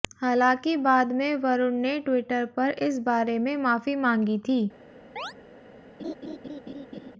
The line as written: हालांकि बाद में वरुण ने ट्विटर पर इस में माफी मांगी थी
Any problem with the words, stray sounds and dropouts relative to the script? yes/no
yes